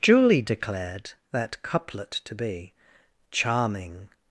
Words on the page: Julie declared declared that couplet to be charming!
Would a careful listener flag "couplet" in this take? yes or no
no